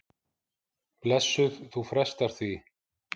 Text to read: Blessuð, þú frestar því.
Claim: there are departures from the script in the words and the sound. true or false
false